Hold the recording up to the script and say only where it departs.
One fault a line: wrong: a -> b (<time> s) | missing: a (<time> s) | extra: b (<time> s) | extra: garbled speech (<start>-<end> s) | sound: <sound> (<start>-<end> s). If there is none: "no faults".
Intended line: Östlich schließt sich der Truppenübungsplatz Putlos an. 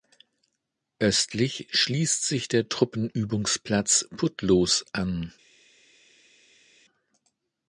no faults